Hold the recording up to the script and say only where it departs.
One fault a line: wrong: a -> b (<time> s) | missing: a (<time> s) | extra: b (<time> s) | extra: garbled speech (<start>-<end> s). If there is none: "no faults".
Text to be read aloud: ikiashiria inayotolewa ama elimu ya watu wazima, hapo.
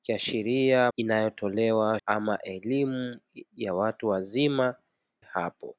no faults